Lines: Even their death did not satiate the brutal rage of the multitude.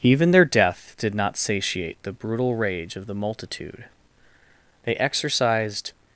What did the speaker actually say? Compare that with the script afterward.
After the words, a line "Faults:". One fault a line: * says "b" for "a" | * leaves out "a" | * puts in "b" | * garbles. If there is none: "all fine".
Even their death did not satiate the brutal rage of the multitude. They exercised
Faults:
* puts in "They exercised"